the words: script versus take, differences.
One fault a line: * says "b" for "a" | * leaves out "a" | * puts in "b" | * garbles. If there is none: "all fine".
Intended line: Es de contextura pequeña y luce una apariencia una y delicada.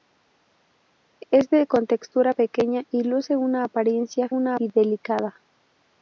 all fine